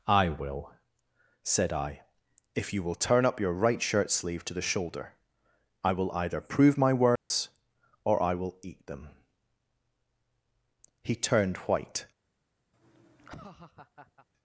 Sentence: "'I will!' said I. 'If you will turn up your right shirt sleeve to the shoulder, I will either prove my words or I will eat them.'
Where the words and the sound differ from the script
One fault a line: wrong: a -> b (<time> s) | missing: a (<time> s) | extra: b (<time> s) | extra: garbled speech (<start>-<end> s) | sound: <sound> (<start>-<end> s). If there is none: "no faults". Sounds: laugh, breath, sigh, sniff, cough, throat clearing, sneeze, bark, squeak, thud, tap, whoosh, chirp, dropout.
sound: dropout (7.2-7.3 s)
extra: He turned white (11.0 s)
sound: laugh (12.7-14.3 s)